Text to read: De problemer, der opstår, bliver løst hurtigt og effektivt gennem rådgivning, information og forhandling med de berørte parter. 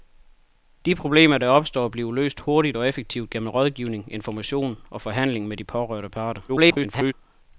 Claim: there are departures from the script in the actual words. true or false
true